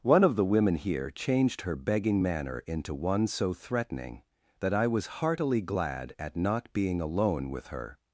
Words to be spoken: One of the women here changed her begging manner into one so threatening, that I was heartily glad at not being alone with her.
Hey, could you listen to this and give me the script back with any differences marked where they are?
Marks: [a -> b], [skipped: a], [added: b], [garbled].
One of the women here changed her begging manner into one so threatening, that I was heartily glad at not being alone with her.